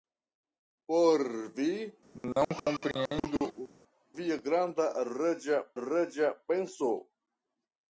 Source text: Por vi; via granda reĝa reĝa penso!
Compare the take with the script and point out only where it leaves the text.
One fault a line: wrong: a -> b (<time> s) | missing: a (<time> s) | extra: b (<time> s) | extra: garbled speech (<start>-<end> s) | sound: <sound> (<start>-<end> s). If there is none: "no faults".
sound: cough (2.1-3.7 s)